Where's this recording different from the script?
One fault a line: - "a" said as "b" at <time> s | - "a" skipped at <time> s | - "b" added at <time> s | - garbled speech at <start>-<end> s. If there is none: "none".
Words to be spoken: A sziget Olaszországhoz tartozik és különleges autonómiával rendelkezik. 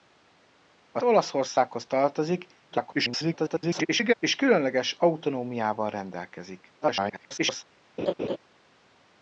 - "sziget" skipped at 1.0 s
- garbled speech at 2.7-4.1 s
- garbled speech at 6.8-7.6 s